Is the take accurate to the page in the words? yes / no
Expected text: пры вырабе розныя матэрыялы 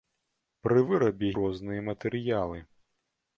yes